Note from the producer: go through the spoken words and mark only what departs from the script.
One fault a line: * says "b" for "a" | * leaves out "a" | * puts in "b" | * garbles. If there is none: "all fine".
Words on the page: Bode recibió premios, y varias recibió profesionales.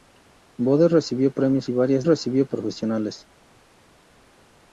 all fine